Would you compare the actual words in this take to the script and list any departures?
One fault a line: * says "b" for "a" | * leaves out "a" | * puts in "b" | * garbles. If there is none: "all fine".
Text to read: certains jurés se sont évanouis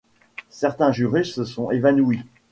all fine